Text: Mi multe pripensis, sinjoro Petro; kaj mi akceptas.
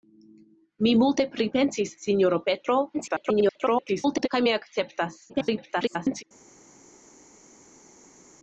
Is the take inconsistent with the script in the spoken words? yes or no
yes